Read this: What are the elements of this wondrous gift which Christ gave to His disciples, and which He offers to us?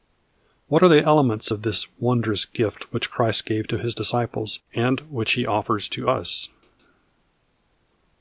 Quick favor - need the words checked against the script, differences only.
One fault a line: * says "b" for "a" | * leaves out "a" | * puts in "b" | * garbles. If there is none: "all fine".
all fine